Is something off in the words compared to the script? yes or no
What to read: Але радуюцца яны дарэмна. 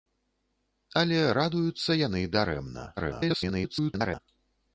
yes